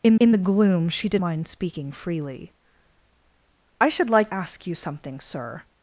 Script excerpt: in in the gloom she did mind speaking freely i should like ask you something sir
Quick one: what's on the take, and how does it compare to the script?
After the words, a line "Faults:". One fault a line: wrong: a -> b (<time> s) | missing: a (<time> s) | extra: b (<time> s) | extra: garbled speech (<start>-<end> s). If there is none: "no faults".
in in the gloom she did mind speaking freely i should like ask you something sir
Faults:
no faults